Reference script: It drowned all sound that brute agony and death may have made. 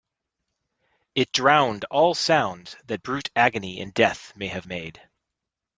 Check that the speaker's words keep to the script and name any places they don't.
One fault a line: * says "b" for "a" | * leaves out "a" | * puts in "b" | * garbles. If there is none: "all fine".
all fine